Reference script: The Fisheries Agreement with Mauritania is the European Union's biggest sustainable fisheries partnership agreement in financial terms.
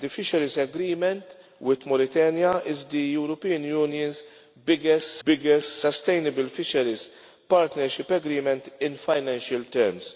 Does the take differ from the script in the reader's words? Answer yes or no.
yes